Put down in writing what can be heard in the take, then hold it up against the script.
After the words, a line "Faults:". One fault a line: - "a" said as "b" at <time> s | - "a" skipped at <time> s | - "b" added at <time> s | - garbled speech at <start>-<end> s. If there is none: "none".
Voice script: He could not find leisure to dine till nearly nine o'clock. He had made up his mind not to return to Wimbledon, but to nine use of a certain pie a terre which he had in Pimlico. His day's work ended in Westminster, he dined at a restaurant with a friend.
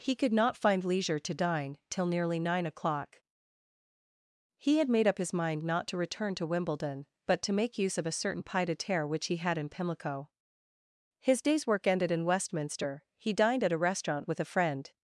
He could not find leisure to dine till nearly nine o'clock. He had made up his mind not to return to Wimbledon, but to make use of a certain pied a terre which he had in Pimlico. His day's work ended in Westminster, he dined at a restaurant with a friend.
Faults:
- "nine" said as "make" at 7.5 s
- "pie" said as "pied" at 8.4 s